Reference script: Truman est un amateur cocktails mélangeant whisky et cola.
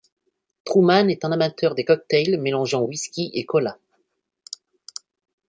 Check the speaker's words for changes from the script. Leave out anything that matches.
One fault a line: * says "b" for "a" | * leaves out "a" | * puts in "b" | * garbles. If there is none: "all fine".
* puts in "des"